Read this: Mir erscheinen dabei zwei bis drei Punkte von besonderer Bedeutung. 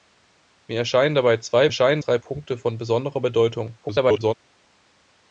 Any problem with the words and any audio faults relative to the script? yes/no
yes